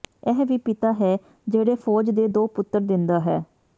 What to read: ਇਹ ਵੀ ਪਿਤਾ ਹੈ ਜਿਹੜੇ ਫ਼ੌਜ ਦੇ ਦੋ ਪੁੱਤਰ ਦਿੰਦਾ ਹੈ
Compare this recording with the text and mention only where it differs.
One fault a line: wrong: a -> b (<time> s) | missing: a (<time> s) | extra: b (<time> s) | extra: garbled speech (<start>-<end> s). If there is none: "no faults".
no faults